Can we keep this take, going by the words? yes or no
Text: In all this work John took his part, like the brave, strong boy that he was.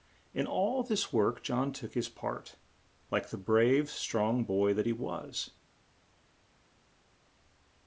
yes